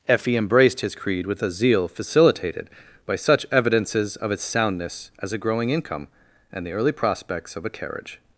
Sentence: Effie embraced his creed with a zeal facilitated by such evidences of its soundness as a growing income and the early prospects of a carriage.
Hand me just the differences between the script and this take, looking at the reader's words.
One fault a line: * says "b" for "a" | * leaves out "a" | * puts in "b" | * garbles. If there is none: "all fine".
all fine